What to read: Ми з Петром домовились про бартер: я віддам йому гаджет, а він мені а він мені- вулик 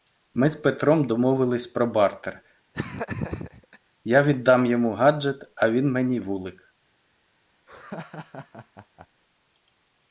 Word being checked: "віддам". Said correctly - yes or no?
yes